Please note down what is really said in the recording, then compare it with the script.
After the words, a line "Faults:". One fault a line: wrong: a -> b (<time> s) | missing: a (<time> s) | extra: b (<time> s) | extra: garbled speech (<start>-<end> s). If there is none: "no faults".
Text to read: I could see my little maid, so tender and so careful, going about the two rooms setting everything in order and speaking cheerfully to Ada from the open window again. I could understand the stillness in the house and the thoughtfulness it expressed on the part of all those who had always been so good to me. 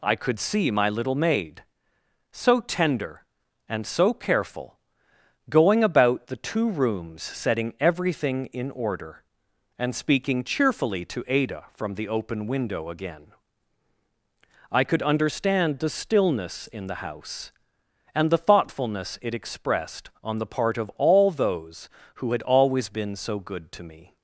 I could see my little maid, so tender and so careful, going about the two rooms setting everything in order and speaking cheerfully to Ada from the open window again. I could understand the stillness in the house and the thoughtfulness it expressed on the part of all those who had always been so good to me.
Faults:
no faults